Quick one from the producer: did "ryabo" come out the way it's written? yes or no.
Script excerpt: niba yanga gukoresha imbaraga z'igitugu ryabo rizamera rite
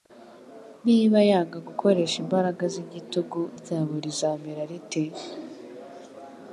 yes